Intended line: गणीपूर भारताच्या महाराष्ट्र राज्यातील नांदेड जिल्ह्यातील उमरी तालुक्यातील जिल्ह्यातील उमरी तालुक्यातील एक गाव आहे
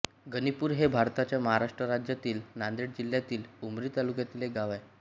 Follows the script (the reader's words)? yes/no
no